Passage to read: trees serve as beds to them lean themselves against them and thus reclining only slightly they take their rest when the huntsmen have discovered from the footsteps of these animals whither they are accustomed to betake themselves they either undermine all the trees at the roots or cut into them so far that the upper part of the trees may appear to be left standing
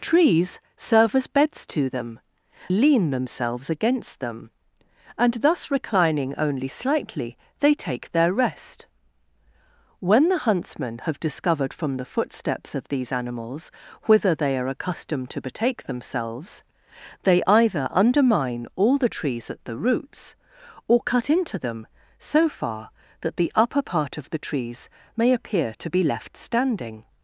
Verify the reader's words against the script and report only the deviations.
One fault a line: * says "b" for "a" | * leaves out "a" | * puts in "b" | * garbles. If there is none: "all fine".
all fine